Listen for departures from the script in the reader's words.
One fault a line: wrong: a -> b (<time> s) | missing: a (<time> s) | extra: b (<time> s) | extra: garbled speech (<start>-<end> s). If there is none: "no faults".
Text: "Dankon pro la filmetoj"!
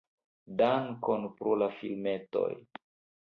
no faults